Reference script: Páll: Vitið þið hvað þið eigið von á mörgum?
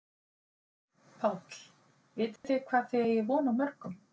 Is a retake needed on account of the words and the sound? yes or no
yes